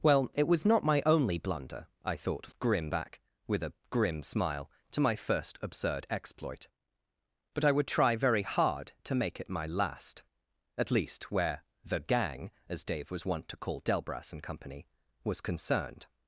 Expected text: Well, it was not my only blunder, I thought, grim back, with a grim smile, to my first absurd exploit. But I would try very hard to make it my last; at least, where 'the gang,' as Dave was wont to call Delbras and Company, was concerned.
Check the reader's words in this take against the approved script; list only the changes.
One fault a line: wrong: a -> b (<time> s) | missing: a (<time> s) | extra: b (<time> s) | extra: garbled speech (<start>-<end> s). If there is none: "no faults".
no faults